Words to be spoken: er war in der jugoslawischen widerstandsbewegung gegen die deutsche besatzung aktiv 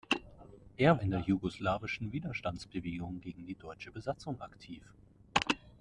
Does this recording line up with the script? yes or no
no